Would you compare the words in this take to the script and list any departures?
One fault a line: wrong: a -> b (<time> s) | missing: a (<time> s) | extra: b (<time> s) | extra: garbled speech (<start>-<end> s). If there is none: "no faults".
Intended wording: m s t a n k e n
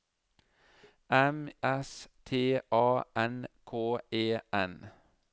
no faults